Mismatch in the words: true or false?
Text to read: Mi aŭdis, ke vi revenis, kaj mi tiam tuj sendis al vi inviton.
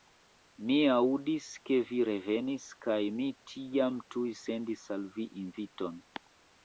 false